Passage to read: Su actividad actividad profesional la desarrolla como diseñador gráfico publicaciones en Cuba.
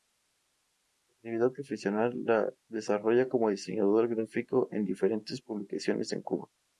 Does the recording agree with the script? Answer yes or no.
no